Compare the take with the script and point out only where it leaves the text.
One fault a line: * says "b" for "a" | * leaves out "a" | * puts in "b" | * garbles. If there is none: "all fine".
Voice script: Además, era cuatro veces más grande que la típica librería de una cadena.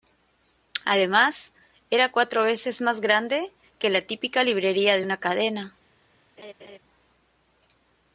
all fine